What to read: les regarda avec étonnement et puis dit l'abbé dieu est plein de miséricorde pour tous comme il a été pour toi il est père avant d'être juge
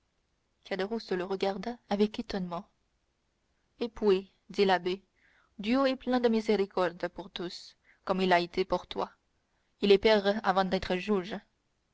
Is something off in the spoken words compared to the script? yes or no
yes